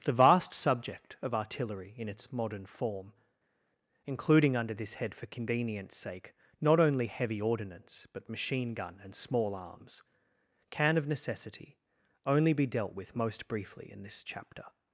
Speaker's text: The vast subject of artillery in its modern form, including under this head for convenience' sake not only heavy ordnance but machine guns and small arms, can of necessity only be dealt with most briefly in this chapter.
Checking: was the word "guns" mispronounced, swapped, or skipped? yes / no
yes